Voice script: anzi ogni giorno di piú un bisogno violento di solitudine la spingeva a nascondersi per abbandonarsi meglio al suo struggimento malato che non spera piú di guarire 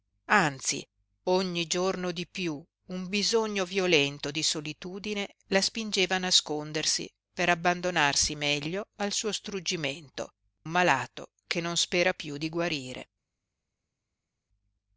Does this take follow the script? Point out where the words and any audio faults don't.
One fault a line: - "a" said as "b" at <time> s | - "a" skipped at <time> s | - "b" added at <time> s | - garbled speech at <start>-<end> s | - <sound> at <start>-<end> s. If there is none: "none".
none